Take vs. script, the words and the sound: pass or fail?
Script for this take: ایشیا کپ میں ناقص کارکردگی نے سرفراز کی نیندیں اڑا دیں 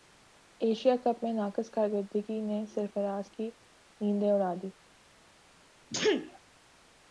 fail